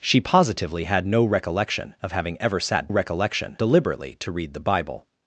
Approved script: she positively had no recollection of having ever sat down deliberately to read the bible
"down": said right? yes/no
no